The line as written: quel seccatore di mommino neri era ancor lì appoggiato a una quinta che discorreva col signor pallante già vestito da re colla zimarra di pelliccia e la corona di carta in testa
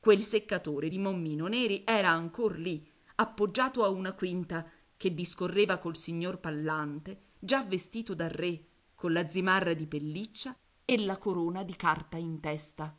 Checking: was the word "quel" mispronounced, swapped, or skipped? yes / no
no